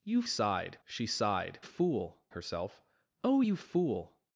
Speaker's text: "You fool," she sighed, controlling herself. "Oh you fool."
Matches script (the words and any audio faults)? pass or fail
fail